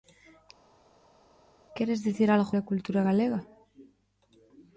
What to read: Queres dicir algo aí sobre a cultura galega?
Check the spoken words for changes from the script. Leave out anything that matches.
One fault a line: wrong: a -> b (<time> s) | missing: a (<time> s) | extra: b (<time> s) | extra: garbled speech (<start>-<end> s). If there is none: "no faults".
missing: aí sobre (2.5 s)